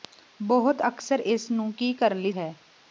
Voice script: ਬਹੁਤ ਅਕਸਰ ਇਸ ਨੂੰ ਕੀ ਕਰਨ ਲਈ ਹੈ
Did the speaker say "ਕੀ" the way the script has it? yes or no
yes